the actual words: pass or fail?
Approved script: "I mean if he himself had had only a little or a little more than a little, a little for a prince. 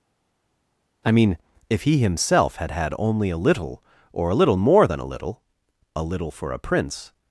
pass